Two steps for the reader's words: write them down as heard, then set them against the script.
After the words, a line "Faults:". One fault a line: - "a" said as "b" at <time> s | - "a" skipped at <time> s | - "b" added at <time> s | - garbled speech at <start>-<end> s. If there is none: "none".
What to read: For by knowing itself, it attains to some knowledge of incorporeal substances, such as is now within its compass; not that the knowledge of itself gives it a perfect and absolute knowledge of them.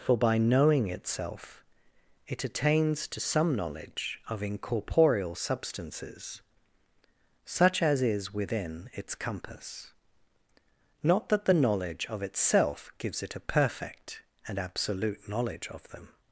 For by knowing itself, it attains to some knowledge of incorporeal substances, such as is within its compass; not that the knowledge of itself gives it a perfect and absolute knowledge of them.
Faults:
- "now" skipped at 8.3 s